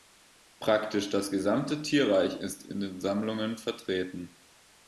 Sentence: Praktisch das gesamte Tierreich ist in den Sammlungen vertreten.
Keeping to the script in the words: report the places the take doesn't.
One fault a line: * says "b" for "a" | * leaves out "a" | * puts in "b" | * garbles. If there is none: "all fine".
all fine